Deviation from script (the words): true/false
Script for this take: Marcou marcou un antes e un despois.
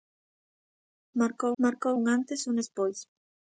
false